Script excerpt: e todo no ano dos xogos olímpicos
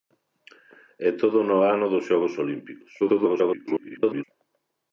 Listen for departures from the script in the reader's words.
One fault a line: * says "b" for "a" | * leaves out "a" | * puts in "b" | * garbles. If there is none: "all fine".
* garbles